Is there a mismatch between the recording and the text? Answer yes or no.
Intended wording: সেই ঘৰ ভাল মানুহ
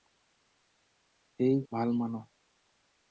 yes